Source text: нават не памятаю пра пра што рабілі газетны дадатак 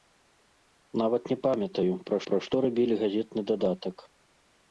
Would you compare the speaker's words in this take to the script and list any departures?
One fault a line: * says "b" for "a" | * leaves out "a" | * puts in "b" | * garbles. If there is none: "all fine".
all fine